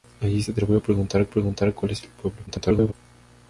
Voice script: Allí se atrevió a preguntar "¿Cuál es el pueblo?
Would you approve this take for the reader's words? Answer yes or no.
no